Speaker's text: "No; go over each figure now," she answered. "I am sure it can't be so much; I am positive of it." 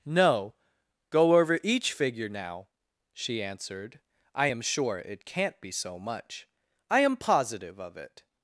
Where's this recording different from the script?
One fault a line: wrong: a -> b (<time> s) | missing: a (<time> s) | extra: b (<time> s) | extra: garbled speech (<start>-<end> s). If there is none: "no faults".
no faults